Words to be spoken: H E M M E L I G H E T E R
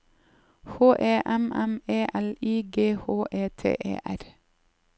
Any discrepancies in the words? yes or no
no